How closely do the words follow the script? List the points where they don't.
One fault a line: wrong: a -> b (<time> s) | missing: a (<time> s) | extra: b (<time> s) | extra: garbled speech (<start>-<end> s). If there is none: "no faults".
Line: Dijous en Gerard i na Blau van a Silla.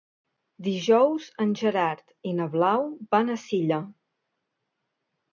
no faults